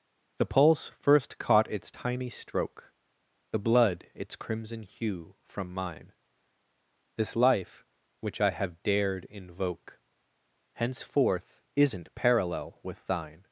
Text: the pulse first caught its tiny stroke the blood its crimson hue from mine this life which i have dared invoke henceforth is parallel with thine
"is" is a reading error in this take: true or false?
true